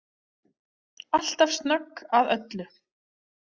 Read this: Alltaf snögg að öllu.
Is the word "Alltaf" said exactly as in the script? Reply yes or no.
yes